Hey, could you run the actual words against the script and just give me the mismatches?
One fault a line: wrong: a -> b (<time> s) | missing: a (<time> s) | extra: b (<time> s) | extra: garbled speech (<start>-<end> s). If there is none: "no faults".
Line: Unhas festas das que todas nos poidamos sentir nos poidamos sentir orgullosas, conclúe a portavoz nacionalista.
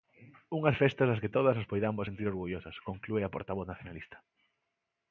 missing: nos poidamos sentir (2.3 s)